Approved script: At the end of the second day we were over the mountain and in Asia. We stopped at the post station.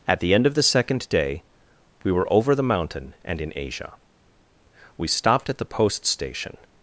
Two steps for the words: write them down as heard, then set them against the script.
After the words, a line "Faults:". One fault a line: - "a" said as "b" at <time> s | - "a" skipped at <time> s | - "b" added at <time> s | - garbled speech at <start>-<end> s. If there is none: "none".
At the end of the second day we were over the mountain and in Asia. We stopped at the post station.
Faults:
none